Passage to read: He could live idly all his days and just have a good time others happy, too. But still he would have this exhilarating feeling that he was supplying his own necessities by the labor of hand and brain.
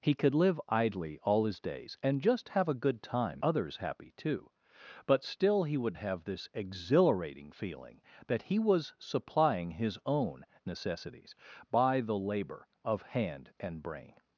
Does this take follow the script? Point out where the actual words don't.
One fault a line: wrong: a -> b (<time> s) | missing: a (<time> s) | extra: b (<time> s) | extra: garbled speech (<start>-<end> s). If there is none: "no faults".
no faults